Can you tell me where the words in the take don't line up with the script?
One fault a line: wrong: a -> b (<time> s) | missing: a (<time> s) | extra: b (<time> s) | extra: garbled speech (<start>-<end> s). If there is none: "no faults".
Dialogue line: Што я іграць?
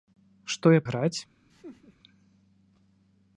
no faults